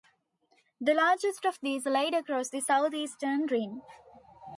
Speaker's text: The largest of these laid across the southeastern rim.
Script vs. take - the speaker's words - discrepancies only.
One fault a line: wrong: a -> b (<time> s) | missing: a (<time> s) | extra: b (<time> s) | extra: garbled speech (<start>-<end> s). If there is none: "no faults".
no faults